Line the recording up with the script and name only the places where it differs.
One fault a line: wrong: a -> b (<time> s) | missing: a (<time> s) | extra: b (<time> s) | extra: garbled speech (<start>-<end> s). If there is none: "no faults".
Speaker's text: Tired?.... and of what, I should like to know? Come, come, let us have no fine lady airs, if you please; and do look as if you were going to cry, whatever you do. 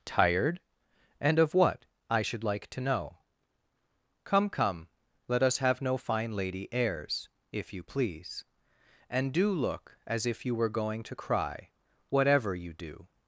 no faults